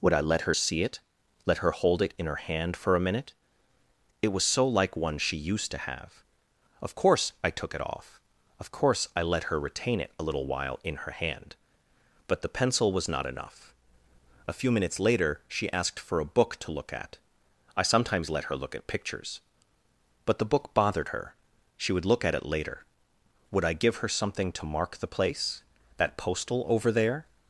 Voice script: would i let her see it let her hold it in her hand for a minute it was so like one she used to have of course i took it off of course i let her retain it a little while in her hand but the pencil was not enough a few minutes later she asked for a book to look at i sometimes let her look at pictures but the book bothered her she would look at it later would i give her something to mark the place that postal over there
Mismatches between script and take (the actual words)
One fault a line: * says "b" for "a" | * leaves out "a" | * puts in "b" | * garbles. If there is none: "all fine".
all fine